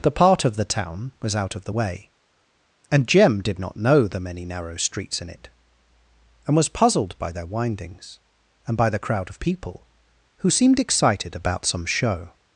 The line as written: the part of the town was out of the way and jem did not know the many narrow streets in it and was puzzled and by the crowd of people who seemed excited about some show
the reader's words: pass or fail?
fail